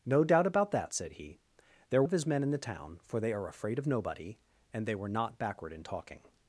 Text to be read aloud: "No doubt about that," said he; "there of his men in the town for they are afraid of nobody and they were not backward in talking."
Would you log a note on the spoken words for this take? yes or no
no